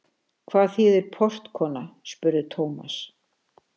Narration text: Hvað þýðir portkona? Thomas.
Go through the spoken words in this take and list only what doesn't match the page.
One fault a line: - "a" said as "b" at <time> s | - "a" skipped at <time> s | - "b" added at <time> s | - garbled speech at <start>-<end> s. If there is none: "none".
- "spurði" added at 2.1 s